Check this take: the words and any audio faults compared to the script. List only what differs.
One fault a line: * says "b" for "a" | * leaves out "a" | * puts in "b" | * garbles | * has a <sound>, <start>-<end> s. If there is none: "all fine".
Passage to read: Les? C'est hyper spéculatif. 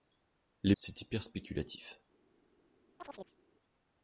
* has a chirp, 3.0-3.4 s